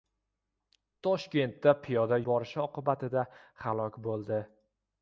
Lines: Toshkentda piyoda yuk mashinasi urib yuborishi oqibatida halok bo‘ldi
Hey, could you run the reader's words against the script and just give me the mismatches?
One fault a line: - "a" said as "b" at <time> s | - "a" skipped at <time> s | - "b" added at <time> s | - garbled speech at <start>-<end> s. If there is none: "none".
- "yuk mashinasi urib" skipped at 2.2 s